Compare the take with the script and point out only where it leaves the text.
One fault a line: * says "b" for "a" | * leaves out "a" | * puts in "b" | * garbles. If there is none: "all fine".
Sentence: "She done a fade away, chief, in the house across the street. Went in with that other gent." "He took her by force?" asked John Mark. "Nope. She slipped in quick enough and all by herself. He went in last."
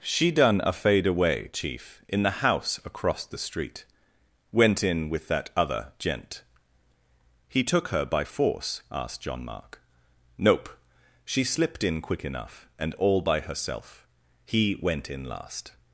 all fine